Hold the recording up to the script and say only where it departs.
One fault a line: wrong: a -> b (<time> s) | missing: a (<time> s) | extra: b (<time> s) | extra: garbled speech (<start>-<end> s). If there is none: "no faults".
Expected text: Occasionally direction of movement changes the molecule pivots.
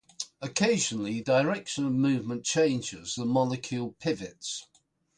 no faults